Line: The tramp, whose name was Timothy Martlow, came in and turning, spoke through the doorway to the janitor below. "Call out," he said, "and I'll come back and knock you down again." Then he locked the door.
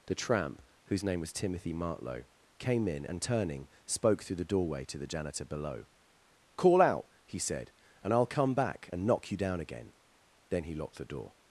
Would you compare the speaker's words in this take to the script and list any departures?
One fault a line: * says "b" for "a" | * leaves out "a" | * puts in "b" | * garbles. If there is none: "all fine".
all fine